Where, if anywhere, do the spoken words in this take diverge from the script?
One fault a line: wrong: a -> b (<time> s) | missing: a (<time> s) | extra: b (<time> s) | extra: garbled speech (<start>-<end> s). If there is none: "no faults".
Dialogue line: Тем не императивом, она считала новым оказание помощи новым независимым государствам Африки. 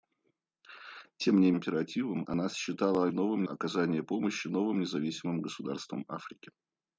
no faults